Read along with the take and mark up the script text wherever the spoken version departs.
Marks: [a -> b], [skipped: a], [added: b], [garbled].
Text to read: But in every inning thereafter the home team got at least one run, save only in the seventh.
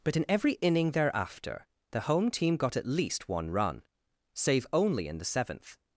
But in every inning thereafter the home team got at least one run, save only in the seventh.